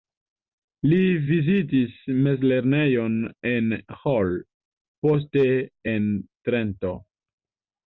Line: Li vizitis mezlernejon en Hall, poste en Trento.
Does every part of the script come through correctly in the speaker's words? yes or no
yes